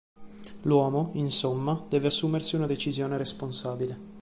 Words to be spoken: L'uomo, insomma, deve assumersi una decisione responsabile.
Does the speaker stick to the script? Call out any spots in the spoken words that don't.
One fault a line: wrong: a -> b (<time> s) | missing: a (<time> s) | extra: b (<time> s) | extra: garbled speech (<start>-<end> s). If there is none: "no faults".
no faults